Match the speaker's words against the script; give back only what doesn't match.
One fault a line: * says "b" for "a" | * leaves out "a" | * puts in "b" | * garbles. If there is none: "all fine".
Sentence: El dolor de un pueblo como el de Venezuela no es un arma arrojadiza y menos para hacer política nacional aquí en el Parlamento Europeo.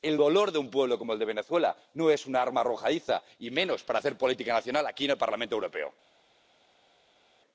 all fine